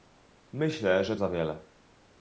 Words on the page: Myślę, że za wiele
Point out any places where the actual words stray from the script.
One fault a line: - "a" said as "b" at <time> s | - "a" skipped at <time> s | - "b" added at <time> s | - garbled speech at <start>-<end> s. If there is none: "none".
none